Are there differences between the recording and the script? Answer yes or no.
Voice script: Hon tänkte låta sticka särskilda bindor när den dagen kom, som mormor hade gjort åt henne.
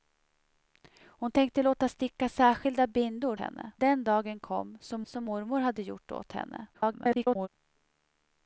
yes